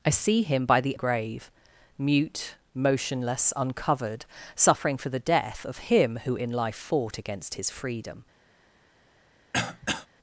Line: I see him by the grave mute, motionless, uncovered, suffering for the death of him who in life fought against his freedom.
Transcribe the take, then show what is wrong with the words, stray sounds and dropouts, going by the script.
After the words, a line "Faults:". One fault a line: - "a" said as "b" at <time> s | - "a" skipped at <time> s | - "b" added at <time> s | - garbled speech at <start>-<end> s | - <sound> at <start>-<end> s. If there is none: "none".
I see him by the grave mute, motionless, uncovered, suffering for the death of him who in life fought against his freedom.
Faults:
- throat clearing at 9.5-10.1 s